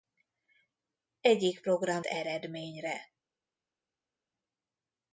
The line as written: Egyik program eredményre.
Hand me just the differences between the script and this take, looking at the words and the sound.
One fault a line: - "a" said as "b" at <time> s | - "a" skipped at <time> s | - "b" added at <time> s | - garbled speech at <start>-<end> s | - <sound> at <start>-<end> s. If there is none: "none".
none